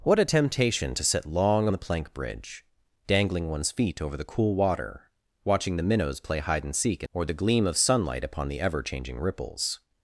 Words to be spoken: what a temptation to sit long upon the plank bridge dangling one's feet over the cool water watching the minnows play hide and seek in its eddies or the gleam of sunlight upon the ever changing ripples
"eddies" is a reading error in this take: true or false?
true